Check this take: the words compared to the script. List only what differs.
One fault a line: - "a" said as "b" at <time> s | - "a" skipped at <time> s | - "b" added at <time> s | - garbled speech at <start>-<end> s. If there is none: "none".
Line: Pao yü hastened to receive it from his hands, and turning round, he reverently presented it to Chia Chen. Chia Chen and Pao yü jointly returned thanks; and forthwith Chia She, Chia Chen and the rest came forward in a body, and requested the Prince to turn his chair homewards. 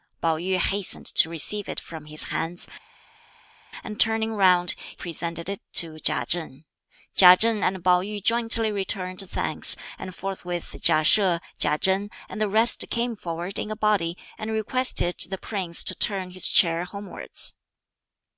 - "he reverently" skipped at 4.7 s